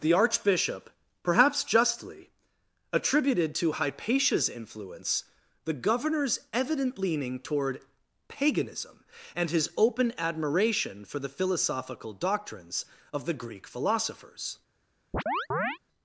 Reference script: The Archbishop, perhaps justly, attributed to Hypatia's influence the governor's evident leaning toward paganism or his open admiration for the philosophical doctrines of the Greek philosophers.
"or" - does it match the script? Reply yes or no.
no